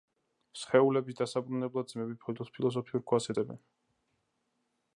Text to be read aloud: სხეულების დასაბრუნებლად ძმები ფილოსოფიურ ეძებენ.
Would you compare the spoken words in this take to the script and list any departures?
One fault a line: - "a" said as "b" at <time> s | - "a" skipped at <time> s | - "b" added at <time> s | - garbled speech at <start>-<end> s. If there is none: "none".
- "ქვას" added at 3.1 s